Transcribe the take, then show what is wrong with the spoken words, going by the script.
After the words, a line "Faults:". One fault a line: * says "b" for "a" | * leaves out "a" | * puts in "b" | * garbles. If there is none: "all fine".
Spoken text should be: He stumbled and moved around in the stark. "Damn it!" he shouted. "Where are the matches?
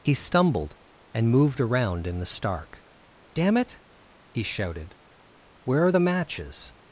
He stumbled and moved around in the stark. "Damn it!" he shouted. "Where are the matches?
Faults:
all fine